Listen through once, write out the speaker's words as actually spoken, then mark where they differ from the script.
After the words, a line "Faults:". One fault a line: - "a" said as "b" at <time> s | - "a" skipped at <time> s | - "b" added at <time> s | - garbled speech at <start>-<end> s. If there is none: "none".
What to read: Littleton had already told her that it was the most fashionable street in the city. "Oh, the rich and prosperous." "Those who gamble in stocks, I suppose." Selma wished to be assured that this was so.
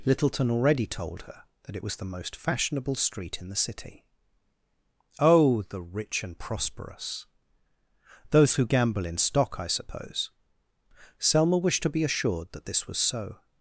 Littleton already told her that it was the most fashionable street in the city. "Oh, the rich and prosperous." "Those who gamble in stock, I suppose." Selma wished to be assured that this was so.
Faults:
- "had" skipped at 0.5 s
- "stocks" said as "stock" at 9.2 s